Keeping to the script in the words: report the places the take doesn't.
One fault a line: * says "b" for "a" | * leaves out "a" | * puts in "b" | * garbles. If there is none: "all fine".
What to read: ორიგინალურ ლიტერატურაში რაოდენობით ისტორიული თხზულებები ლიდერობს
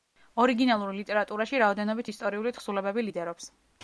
all fine